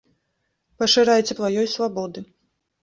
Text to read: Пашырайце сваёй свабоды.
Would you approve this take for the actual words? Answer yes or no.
yes